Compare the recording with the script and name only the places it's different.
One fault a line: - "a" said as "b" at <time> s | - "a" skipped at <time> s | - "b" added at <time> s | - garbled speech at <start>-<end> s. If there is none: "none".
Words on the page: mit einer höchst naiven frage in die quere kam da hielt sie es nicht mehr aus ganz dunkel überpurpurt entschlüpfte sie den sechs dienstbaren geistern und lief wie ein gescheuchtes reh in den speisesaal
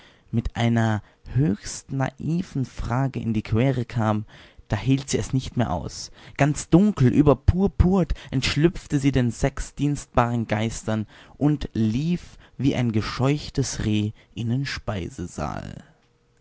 none